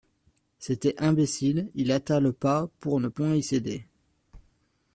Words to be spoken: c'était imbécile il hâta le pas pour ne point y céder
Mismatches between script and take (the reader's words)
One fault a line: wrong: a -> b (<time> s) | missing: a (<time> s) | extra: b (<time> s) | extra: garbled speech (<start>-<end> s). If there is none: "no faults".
no faults